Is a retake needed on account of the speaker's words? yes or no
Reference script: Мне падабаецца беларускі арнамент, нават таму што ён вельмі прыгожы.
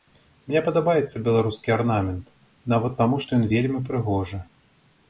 no